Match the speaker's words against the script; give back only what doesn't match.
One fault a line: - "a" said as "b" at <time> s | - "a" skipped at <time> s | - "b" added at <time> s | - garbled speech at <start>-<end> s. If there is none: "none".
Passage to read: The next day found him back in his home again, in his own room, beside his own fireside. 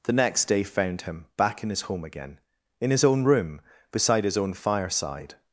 none